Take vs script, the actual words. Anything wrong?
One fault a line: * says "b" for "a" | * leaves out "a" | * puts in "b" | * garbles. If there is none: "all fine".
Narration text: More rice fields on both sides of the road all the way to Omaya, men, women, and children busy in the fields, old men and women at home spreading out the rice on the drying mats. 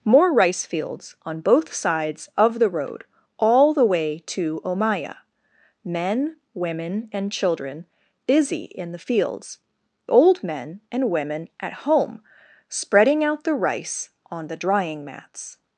all fine